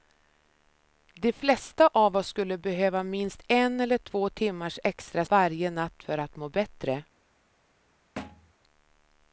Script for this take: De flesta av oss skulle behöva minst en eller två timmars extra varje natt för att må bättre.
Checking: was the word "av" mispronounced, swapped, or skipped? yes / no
no